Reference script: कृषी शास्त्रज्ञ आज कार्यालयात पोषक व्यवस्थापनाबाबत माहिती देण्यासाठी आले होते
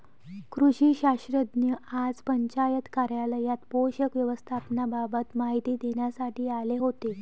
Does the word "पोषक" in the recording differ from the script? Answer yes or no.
no